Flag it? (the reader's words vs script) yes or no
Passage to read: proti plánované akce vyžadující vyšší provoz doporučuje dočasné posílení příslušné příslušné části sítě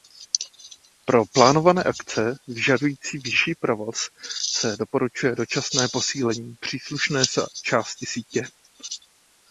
yes